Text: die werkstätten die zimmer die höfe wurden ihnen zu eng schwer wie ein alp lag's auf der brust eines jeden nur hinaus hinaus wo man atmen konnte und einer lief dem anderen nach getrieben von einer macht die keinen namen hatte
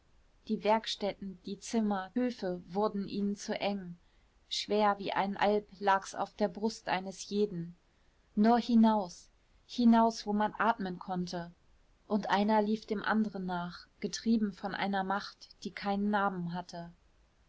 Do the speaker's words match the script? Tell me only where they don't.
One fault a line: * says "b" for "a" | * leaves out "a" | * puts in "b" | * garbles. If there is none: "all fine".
* leaves out "die"